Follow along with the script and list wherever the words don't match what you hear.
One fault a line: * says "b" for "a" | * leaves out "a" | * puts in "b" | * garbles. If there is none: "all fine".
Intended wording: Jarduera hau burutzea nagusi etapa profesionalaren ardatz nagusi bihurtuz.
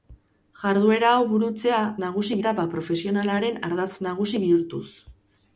all fine